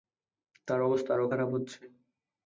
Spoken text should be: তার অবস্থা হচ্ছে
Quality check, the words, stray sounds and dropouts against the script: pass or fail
fail